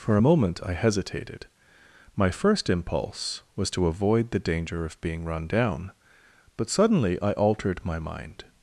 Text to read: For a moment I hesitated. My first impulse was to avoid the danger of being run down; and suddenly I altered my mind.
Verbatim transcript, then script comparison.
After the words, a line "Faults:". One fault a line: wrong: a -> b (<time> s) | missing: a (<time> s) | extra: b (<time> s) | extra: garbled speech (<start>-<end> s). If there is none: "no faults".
For a moment I hesitated. My first impulse was to avoid the danger of being run down; but suddenly I altered my mind.
Faults:
wrong: and -> but (6.5 s)